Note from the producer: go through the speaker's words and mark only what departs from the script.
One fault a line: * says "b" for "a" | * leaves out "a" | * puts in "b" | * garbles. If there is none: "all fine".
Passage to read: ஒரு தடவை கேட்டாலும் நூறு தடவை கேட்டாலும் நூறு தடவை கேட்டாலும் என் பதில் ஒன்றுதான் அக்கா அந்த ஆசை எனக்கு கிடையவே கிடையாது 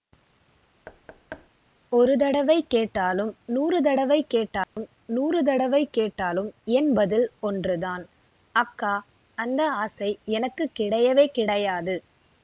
all fine